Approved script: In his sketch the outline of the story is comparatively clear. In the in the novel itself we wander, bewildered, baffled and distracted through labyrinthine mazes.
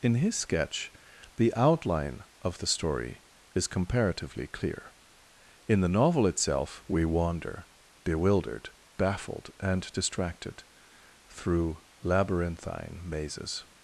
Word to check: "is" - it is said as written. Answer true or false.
true